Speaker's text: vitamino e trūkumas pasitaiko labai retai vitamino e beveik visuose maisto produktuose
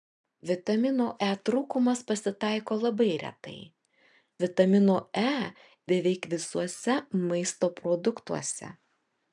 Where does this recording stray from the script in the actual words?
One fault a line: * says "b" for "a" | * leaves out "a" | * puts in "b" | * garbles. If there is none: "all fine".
all fine